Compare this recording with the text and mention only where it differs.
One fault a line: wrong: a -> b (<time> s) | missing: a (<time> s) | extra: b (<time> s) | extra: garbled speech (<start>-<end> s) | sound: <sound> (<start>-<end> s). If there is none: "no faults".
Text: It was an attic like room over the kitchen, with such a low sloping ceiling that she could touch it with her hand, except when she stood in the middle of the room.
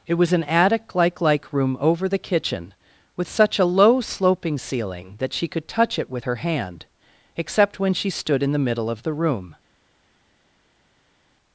extra: like (1.2 s)